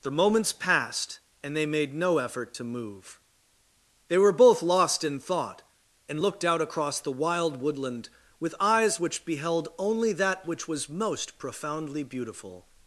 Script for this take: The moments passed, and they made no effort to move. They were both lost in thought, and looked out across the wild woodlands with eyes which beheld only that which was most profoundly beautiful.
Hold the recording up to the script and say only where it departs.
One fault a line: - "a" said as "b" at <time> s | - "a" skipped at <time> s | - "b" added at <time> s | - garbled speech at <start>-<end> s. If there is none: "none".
- "woodlands" said as "woodland" at 7.6 s